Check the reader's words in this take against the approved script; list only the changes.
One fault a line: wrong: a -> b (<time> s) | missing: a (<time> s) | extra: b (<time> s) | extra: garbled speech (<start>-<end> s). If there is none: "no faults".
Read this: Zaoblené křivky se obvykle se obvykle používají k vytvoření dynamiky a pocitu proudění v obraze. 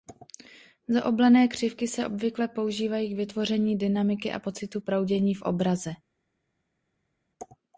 missing: se obvykle (2.5 s)